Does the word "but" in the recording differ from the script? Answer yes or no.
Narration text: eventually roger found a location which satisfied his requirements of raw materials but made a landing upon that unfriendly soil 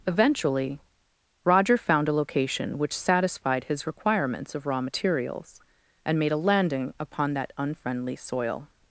yes